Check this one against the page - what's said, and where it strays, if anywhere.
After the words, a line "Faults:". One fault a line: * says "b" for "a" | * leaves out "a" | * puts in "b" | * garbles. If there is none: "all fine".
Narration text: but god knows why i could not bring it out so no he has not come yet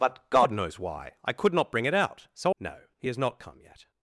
but god knows why i could not bring it out so no he has not come yet
Faults:
all fine